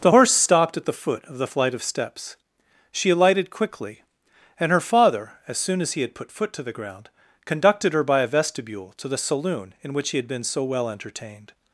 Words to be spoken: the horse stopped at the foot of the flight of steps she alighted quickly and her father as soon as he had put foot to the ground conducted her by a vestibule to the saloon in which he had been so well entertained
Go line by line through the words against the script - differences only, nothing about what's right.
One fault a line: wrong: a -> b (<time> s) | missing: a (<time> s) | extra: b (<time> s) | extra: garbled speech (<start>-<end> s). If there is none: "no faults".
no faults